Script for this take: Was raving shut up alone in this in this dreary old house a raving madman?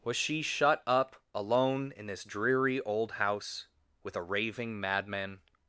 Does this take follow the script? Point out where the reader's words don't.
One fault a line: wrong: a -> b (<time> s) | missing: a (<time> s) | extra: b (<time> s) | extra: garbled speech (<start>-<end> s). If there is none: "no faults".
wrong: raving -> she (0.1 s)
missing: in this (2.2 s)
extra: with (4.0 s)